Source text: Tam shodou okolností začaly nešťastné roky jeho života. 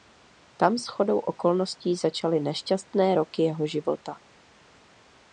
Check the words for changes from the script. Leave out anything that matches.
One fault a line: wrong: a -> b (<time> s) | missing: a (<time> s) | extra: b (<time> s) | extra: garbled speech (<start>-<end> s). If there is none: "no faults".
no faults